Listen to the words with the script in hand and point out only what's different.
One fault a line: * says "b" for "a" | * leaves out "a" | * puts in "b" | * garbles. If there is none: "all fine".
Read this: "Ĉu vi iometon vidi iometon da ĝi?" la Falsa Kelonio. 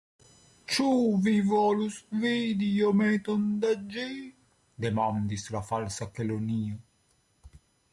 * says "volus" for "iometon"
* puts in "demandis"